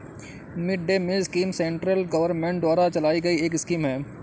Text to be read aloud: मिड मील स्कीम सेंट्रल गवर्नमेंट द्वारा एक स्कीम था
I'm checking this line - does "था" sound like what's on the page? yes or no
no